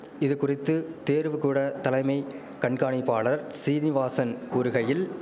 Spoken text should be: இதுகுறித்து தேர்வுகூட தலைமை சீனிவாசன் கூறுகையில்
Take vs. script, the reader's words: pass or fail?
fail